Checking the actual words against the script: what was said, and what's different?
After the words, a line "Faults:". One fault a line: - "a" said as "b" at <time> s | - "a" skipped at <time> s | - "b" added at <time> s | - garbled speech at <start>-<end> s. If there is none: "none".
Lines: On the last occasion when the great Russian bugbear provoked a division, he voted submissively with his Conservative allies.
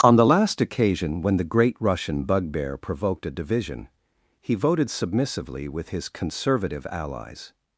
On the last occasion when the great Russian bugbear provoked a division, he voted submissively with his Conservative allies.
Faults:
none